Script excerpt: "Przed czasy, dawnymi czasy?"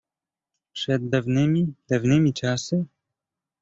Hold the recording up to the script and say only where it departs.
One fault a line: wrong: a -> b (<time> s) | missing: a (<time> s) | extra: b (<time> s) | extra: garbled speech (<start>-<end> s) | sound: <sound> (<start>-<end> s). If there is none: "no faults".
wrong: czasy -> dawnymi (1.1 s)